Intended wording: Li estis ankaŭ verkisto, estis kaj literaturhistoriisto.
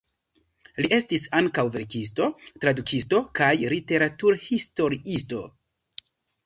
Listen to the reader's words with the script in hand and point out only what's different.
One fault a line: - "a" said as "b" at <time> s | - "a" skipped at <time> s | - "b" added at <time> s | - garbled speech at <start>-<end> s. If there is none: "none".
- "estis" said as "tradukisto" at 2.7 s